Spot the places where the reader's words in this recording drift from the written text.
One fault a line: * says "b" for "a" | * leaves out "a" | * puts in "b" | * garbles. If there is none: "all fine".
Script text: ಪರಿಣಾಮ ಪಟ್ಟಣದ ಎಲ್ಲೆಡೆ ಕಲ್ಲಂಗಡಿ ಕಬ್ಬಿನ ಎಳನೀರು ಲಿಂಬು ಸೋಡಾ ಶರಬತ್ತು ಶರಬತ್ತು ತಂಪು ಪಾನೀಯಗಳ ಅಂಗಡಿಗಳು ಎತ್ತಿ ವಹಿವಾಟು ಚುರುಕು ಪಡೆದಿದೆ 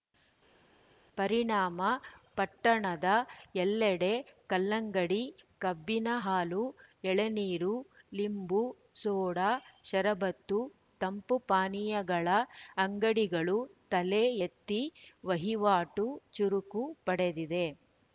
* puts in "ಹಾಲು"
* leaves out "ಶರಬತ್ತು"
* puts in "ತಲೆ"